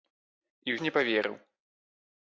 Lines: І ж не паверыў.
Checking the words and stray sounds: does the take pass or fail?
pass